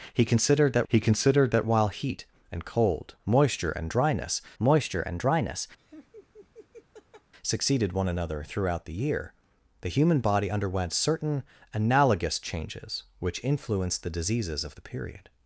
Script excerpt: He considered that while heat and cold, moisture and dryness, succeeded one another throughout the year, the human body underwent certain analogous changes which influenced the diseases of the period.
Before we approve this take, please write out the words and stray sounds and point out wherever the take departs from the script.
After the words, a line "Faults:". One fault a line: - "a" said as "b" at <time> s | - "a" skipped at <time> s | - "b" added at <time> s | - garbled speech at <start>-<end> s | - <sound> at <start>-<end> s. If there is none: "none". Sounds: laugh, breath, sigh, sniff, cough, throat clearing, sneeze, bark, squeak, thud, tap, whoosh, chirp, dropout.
He considered that he considered that while heat and cold, moisture and dryness moisture and dryness, succeeded one another throughout the year, the human body underwent certain analogous changes which influenced the diseases of the period.
Faults:
- "he considered that" added at 0.9 s
- "moisture and dryness" added at 4.6 s
- laugh at 5.8-7.3 s